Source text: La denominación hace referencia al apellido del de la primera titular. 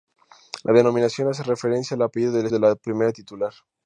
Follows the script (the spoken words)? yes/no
yes